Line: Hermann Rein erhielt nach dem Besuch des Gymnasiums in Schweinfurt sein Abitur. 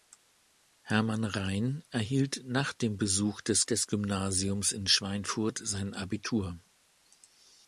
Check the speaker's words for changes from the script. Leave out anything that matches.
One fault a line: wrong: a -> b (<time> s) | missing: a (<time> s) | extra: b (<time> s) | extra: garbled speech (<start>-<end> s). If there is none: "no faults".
extra: des (3.6 s)